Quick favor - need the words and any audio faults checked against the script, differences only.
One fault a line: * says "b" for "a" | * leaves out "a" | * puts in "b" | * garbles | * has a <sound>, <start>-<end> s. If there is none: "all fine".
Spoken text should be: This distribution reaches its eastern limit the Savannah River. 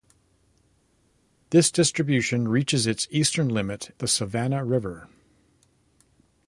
all fine